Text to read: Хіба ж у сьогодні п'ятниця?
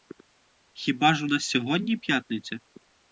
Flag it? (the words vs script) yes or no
yes